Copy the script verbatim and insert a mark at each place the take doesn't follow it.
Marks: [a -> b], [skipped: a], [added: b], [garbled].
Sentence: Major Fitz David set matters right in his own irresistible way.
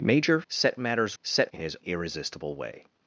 Major [skipped: Fitz David] set matters [right -> set] in his [skipped: own] irresistible way.